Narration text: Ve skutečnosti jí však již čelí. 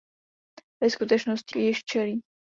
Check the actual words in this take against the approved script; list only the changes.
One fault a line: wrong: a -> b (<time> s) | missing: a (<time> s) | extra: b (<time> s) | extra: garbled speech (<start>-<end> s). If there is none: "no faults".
missing: jí však (1.6 s)